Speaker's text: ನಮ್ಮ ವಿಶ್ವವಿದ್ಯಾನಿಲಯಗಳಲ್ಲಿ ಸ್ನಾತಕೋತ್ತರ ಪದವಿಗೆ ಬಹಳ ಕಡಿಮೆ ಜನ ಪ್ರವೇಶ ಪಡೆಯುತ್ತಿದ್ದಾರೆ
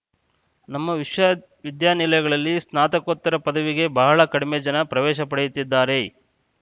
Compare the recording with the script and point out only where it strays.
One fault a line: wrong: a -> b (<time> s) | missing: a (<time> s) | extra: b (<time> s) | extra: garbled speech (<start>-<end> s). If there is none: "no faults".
no faults